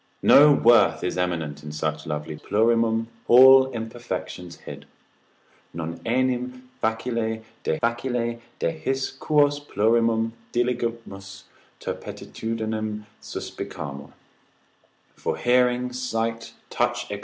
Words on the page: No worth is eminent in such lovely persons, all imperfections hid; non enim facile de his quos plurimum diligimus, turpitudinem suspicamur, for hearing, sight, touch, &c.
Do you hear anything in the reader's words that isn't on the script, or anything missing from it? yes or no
yes